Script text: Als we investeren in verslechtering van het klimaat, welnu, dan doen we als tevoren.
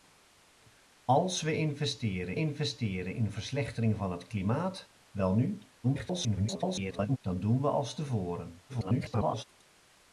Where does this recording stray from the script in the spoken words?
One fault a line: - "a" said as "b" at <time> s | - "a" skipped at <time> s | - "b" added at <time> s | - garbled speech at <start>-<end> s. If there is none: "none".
- "investeren" added at 2.3 s
- garbled speech at 5.8-7.2 s
- garbled speech at 8.7-9.4 s